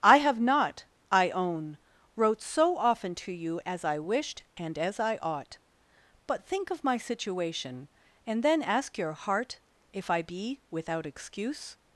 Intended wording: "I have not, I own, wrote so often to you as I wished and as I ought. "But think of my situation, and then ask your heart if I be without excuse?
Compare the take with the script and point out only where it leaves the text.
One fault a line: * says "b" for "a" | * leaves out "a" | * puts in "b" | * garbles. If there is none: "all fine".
all fine